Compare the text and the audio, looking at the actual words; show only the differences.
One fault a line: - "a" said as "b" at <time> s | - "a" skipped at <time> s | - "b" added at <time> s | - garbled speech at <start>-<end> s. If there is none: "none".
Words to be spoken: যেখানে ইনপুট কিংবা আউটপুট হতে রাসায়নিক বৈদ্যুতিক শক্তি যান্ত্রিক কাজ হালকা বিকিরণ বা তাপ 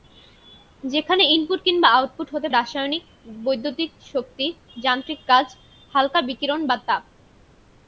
none